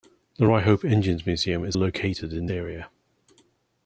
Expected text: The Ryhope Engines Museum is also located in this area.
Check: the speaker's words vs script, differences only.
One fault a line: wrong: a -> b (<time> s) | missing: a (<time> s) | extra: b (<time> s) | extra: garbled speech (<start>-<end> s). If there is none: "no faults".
missing: also (1.8 s)
missing: this (2.5 s)